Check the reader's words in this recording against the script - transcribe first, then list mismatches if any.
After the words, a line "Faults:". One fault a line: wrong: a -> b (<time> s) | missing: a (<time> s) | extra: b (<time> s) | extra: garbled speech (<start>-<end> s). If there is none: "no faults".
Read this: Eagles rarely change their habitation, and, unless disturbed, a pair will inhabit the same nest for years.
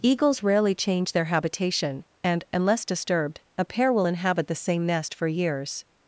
Eagles rarely change their habitation, and, unless disturbed, a pair will inhabit the same nest for years.
Faults:
no faults